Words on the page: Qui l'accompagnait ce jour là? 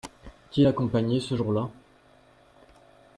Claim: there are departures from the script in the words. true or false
false